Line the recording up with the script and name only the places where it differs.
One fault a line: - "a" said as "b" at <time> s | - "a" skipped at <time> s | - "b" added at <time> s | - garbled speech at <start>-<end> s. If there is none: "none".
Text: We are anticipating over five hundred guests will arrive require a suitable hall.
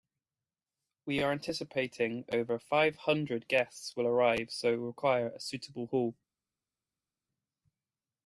- "so" added at 4.5 s